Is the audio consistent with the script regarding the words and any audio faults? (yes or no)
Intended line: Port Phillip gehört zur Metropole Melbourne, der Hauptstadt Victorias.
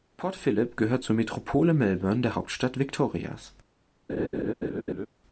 no